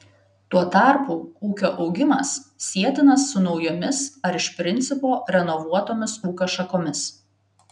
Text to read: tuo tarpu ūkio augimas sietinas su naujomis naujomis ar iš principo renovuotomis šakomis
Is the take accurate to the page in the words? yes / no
no